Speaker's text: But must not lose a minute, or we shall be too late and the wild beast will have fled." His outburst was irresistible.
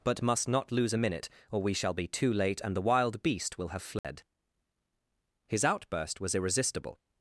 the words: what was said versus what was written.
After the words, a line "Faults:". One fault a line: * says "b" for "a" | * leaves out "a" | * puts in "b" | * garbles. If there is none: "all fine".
But must not lose a minute, or we shall be too late and the wild beast will have fled." His outburst was irresistible.
Faults:
all fine